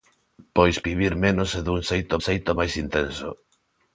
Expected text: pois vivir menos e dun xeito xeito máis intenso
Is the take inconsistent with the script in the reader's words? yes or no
no